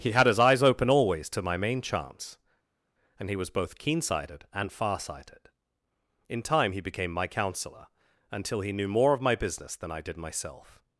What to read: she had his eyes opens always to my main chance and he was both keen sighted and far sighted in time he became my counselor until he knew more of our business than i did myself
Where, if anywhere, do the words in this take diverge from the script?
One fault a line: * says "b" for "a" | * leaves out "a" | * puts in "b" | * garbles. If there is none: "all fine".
* says "he" for "she"
* says "open" for "opens"
* says "my" for "our"